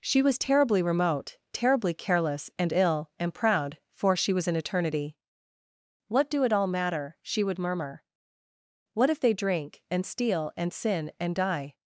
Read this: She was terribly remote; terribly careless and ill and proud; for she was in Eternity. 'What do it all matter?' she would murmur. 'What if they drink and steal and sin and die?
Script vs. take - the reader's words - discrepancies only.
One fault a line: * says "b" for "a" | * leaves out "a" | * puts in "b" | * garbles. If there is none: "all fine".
all fine